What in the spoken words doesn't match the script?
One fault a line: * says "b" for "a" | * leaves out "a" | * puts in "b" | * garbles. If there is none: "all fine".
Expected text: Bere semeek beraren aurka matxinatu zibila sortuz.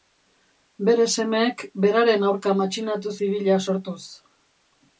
all fine